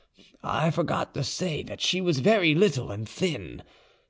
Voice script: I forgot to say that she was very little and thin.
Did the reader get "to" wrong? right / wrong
right